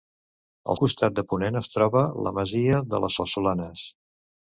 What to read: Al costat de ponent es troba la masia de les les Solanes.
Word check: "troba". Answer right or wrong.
right